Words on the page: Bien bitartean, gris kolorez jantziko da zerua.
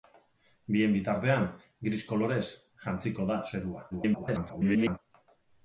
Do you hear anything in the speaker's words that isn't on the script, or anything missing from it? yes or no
yes